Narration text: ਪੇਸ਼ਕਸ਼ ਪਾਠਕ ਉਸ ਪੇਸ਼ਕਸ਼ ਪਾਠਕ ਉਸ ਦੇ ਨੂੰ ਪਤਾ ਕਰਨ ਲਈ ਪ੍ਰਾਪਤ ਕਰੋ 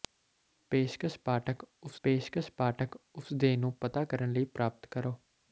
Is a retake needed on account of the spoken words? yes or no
no